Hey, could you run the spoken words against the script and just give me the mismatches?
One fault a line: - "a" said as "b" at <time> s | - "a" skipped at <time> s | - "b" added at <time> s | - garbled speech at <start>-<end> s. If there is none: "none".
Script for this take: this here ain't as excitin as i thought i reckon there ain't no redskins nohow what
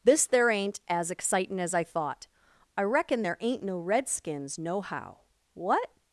- "here" said as "there" at 0.2 s